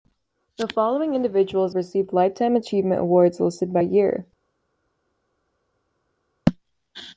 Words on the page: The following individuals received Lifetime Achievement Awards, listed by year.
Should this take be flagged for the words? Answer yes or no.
no